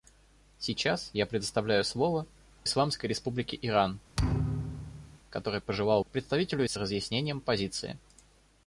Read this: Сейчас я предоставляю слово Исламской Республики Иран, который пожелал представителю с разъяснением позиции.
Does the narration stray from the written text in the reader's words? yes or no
no